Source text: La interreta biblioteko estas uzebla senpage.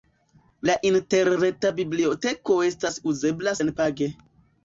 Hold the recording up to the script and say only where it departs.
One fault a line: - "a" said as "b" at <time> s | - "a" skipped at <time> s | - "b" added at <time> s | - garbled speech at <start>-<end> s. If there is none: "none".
none